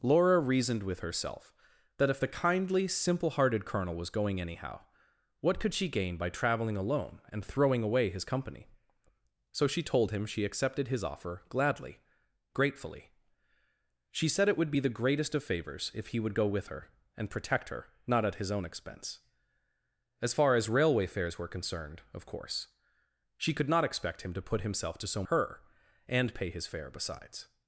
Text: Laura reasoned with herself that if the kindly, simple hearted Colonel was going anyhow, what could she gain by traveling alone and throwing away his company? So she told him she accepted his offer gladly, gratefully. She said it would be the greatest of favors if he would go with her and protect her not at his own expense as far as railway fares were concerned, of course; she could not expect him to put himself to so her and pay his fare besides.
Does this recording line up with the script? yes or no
yes